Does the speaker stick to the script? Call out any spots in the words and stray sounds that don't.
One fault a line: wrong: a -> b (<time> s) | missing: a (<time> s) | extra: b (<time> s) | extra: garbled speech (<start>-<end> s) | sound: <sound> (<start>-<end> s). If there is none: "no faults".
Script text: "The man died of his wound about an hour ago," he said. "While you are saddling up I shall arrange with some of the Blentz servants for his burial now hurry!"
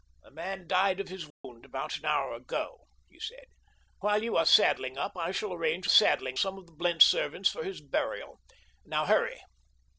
sound: dropout (1.3-1.4 s)
wrong: with -> saddling (5.9 s)